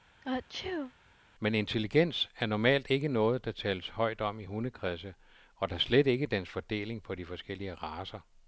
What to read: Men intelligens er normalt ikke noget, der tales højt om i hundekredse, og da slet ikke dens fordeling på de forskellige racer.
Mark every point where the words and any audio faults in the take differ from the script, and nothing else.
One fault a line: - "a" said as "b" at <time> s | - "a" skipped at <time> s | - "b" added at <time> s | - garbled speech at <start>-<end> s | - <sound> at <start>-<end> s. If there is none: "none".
- sneeze at 0.2-0.9 s